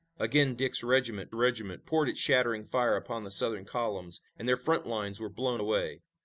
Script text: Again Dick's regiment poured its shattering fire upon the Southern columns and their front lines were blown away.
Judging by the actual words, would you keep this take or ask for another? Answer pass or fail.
fail